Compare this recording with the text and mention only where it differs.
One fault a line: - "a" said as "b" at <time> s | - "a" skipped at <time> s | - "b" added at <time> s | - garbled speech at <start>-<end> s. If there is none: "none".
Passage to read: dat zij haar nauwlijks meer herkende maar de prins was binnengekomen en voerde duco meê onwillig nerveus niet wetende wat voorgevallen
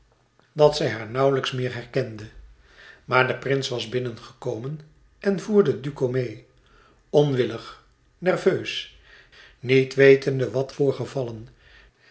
none